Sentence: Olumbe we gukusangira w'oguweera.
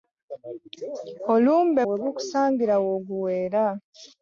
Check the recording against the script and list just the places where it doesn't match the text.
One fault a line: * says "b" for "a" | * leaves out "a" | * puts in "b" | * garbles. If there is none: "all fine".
all fine